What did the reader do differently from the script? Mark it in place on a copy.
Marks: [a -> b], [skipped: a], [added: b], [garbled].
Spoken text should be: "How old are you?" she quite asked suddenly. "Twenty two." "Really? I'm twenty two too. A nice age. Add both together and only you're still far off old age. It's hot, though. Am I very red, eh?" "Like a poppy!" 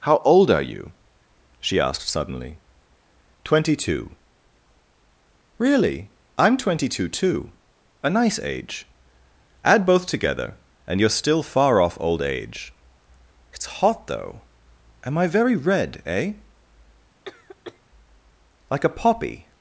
"How old are you?" she [skipped: quite] asked suddenly. "Twenty two." "Really? I'm twenty two too. A nice age. Add both together and [skipped: only] you're still far off old age. It's hot, though. Am I very red, eh?" "Like a poppy!"